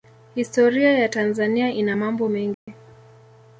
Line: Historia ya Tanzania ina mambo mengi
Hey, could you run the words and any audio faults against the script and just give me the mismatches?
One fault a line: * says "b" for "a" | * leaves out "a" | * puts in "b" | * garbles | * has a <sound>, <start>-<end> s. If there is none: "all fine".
* has a dropout, 2.5-2.7 s